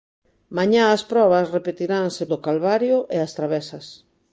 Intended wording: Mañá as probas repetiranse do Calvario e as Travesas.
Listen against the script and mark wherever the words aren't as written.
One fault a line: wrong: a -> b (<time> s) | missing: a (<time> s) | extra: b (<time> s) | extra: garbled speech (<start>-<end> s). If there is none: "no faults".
no faults